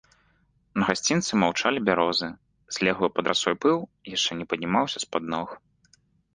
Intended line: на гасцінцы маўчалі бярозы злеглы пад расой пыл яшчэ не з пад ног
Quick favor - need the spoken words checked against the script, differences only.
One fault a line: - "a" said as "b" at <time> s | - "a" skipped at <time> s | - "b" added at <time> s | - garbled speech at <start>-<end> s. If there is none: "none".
- "паднімаўся" added at 4.5 s